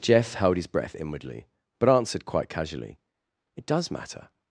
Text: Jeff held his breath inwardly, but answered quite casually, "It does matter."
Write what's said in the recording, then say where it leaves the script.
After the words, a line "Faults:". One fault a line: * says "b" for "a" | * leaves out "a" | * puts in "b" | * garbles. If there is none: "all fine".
Jeff held his breath inwardly, but answered quite casually, "It does matter."
Faults:
all fine